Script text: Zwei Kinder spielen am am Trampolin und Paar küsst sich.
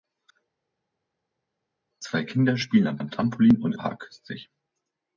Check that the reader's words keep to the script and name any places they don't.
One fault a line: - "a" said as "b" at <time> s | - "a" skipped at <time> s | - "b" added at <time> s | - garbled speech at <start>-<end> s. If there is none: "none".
none